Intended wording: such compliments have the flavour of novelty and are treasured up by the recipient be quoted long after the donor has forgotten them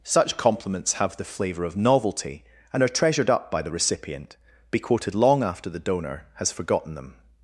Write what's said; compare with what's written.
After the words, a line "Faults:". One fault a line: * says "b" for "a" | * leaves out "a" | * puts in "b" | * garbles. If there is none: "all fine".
such compliments have the flavour of novelty and are treasured up by the recipient be quoted long after the donor has forgotten them
Faults:
all fine